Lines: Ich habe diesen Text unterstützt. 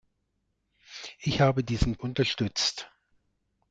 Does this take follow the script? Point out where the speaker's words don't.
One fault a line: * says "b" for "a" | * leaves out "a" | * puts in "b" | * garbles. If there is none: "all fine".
* leaves out "Text"